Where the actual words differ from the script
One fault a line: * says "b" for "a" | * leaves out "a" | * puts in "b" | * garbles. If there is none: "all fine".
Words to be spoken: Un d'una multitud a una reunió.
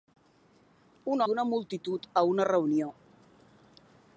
all fine